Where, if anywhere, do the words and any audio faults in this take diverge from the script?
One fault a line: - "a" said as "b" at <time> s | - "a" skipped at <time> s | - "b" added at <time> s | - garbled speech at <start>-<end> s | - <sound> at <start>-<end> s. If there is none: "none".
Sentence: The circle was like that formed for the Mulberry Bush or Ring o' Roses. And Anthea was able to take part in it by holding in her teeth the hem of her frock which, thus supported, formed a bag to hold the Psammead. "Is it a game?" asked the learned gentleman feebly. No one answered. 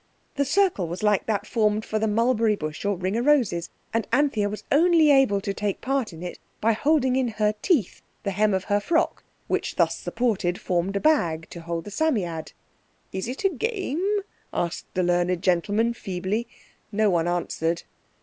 - "only" added at 4.7 s